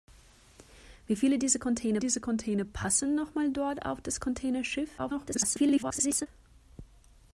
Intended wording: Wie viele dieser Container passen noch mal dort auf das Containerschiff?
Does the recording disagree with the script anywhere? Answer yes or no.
yes